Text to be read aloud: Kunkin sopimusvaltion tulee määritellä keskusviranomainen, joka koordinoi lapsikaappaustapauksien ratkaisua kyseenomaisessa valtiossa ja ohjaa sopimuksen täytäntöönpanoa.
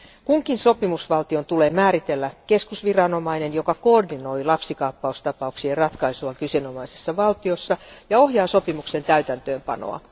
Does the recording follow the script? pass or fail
pass